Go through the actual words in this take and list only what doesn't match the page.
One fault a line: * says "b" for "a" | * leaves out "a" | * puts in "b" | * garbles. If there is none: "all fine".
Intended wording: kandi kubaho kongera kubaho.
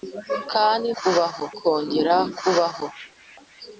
all fine